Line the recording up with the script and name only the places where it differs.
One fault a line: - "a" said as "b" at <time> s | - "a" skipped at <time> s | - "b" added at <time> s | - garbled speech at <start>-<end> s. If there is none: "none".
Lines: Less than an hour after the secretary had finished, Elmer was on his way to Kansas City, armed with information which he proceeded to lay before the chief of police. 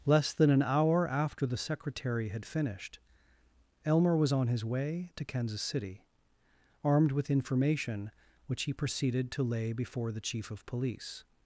none